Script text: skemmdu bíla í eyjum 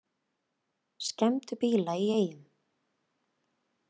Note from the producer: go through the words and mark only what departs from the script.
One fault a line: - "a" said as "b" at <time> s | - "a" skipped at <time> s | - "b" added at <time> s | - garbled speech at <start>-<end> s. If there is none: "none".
none